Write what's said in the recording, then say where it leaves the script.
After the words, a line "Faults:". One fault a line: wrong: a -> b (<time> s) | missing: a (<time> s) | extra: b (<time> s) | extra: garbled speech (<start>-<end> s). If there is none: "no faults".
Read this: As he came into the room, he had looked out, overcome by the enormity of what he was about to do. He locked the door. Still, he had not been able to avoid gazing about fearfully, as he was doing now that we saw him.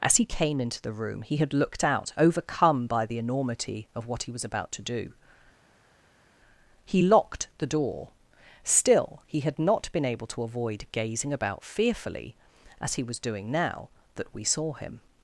As he came into the room, he had looked out, overcome by the enormity of what he was about to do. He locked the door. Still, he had not been able to avoid gazing about fearfully, as he was doing now that we saw him.
Faults:
no faults